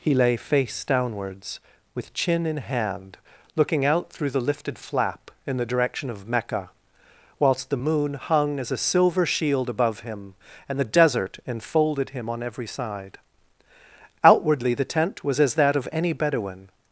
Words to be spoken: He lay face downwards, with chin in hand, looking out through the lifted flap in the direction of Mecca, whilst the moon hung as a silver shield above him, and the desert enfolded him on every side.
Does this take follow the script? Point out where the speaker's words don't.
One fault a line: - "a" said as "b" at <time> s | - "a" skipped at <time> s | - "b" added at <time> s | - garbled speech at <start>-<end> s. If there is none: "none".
- "Outwardly the tent was as that of any Bedouin" added at 14.2 s